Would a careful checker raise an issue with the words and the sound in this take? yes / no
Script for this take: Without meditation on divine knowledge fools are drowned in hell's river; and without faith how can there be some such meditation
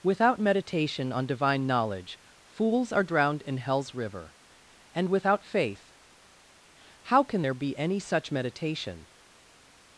yes